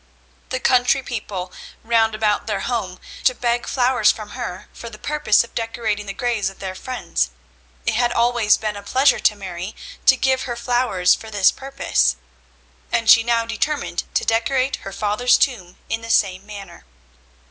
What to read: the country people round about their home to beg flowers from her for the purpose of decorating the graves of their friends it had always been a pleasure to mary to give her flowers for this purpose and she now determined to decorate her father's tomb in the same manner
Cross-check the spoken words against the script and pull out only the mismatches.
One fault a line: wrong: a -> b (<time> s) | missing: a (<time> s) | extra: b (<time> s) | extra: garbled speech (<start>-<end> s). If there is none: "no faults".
no faults